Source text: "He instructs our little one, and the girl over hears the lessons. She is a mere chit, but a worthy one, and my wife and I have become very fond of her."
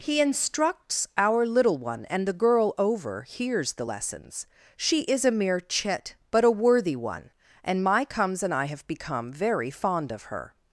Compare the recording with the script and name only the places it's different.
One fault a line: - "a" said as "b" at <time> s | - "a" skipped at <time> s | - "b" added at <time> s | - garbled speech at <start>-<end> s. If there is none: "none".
- "wife" said as "comes" at 8.0 s